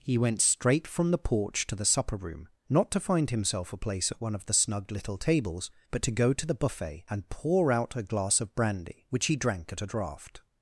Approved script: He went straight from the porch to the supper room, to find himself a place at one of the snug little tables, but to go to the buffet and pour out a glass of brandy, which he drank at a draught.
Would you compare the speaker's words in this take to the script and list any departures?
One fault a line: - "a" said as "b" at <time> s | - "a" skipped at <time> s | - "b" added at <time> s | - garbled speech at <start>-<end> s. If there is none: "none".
- "not" added at 2.7 s